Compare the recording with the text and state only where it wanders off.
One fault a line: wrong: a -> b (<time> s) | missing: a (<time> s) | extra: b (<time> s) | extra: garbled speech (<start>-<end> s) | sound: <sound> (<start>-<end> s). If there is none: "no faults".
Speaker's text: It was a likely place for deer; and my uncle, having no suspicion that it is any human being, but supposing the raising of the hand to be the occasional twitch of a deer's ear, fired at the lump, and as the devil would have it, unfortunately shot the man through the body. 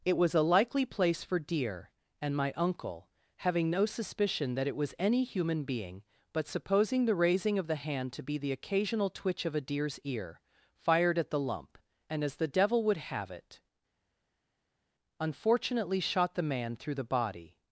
wrong: is -> was (4.8 s)